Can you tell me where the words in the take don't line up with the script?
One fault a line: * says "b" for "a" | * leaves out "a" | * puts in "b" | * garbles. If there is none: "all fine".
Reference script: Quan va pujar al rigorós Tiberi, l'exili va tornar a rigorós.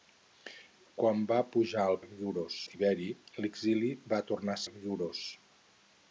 all fine